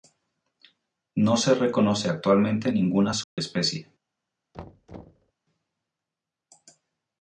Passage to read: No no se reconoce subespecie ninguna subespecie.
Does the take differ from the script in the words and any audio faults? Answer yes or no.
yes